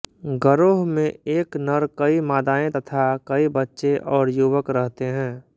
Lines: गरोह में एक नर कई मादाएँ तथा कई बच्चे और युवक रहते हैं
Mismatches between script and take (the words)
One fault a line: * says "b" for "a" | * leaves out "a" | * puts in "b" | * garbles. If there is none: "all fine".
all fine